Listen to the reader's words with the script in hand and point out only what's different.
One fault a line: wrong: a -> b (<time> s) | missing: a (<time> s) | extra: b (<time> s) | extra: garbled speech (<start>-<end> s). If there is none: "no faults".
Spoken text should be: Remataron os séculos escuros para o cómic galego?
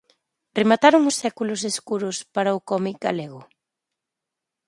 no faults